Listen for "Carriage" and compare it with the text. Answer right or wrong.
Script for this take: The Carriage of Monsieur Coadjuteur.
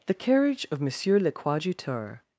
right